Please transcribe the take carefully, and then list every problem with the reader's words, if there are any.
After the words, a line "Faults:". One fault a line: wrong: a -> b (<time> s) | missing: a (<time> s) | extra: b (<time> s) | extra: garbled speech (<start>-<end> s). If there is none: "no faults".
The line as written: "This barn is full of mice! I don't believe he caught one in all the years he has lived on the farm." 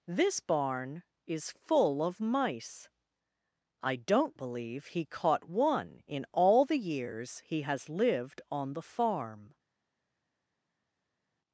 "This barn is full of mice! I don't believe he caught one in all the years he has lived on the farm."
Faults:
no faults